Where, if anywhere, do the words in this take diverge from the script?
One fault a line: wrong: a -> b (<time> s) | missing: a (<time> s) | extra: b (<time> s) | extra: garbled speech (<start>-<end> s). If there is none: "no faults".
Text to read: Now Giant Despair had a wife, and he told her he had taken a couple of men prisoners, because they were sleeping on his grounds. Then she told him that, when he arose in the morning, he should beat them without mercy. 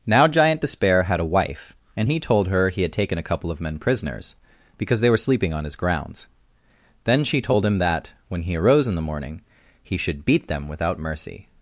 no faults